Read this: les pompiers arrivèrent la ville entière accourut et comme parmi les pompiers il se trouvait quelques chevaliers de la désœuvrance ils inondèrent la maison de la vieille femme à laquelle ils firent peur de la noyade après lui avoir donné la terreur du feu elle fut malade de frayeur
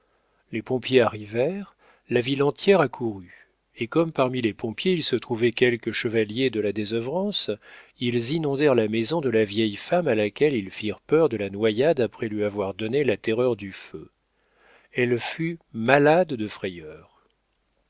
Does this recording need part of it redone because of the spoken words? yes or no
no